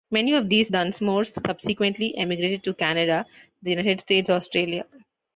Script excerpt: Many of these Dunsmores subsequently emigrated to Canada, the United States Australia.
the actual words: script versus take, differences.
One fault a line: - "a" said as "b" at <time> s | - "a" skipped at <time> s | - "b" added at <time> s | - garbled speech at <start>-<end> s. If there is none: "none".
none